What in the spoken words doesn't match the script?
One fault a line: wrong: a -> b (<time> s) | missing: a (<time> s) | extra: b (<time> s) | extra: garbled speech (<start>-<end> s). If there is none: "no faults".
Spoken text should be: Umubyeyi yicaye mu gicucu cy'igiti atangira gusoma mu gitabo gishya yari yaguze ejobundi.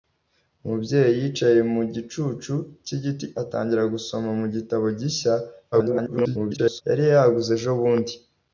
extra: garbled speech (5.7-6.8 s)